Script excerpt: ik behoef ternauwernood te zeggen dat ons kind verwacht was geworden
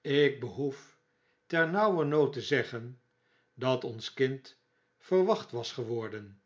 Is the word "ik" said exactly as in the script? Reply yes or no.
yes